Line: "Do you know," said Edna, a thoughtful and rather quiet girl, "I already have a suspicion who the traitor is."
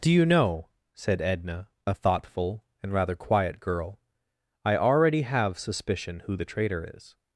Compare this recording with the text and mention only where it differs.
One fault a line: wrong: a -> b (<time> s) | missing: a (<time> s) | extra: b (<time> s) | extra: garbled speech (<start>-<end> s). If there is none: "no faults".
missing: a (5.6 s)